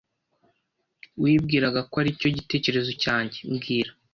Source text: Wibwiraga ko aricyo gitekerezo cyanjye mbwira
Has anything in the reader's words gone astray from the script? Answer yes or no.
no